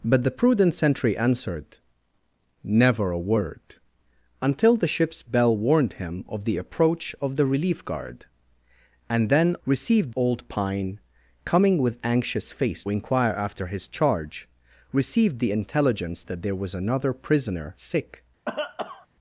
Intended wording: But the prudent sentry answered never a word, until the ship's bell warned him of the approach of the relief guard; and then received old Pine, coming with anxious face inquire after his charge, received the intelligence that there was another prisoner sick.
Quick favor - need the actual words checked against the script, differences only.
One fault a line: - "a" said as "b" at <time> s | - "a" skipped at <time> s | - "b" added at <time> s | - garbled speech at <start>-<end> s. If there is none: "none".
none